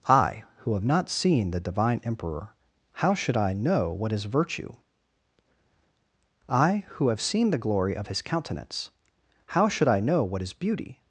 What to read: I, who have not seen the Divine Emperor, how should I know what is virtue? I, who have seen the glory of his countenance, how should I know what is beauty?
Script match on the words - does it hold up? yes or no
yes